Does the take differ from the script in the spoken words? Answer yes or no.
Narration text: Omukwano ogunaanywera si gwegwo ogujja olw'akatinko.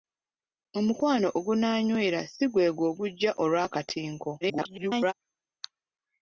yes